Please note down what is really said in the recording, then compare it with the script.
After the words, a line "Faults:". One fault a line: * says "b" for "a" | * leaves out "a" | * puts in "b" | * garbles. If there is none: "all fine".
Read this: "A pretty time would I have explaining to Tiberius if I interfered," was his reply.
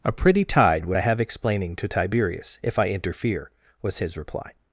"A pretty tide would I have explaining to Tiberius if I interfere," was his reply.
Faults:
* says "tide" for "time"
* says "interfere" for "interfered"